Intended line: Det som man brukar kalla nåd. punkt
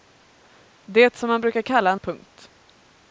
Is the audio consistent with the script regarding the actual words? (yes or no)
no